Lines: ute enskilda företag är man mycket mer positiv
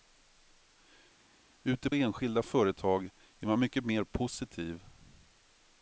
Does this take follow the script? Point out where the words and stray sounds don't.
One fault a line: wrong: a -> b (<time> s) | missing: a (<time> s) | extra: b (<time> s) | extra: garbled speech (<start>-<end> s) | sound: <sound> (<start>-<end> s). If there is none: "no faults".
no faults